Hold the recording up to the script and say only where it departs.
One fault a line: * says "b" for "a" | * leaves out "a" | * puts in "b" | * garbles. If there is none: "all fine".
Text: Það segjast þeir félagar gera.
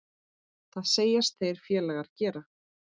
all fine